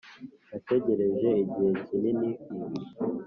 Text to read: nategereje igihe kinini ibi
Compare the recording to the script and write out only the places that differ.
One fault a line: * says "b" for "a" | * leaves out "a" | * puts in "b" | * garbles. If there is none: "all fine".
all fine